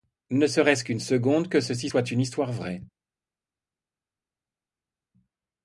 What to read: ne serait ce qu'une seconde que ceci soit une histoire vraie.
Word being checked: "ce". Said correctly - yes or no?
yes